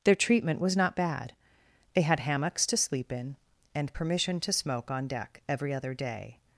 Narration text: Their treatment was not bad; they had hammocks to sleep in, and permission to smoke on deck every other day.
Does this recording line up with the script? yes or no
yes